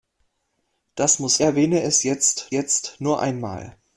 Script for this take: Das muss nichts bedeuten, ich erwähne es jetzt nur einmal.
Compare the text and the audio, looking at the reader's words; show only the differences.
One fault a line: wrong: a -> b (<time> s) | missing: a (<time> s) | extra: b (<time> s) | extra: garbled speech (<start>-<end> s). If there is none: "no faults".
missing: nichts bedeuten ich (1.4 s)
extra: jetzt (2.5 s)